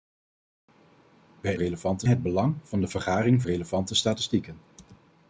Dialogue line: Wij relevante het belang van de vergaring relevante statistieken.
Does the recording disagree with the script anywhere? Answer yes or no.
no